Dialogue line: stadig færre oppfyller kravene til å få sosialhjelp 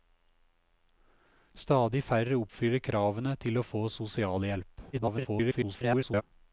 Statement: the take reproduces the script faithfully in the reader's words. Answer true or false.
false